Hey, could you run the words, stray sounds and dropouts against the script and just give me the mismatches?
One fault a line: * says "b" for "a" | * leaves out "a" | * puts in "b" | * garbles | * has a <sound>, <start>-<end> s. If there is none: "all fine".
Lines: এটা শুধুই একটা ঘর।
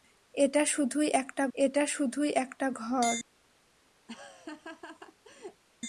* puts in "এটা শুধুই একটা"
* has a laugh, 4.1-5.6 s